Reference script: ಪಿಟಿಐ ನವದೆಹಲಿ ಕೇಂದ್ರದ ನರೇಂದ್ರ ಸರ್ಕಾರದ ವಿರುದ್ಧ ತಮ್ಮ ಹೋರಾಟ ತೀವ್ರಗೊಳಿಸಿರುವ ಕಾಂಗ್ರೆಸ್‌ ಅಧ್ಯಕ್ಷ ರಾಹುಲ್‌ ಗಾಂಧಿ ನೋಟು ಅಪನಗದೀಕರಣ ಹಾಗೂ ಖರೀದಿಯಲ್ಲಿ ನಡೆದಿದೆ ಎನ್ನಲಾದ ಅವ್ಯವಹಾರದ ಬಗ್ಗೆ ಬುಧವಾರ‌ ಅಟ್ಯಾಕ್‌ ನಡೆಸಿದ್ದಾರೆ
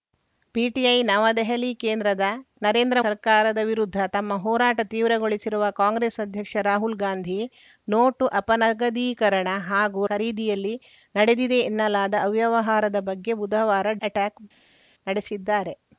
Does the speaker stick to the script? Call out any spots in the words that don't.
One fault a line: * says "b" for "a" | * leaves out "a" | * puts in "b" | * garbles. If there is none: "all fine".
all fine